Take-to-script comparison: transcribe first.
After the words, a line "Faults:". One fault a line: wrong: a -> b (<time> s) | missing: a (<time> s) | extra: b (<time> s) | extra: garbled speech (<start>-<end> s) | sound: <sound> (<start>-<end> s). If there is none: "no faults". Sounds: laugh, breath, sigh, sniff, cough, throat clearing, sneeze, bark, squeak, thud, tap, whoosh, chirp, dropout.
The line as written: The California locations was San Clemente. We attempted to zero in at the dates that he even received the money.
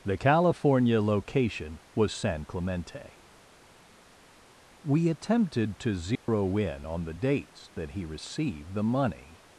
The California location was San Clemente. We attempted to zero in on the dates that he received the money.
Faults:
wrong: locations -> location (1.0 s)
sound: dropout (6.2-6.3 s)
wrong: at -> on (6.8 s)
missing: even (8.0 s)